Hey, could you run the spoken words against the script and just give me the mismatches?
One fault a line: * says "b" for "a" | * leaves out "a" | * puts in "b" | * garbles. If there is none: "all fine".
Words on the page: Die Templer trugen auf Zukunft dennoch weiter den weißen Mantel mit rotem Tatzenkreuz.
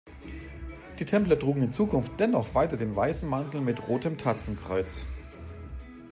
* says "in" for "auf"